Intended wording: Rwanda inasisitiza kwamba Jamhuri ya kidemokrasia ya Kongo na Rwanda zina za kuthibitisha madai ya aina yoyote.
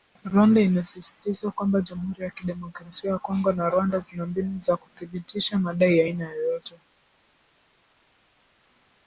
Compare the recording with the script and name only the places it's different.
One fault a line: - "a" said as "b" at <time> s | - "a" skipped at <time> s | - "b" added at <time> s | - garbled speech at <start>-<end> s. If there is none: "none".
- "mbinu" added at 4.2 s